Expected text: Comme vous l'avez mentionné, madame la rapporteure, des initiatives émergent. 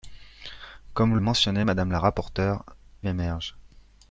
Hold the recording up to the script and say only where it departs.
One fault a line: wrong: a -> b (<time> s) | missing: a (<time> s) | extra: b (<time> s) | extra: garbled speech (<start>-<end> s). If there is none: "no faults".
missing: l'avez (1.2 s)
missing: des initiatives (2.6 s)